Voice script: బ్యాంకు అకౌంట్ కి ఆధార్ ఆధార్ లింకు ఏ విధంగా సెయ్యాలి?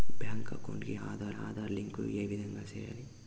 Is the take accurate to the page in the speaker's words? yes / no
yes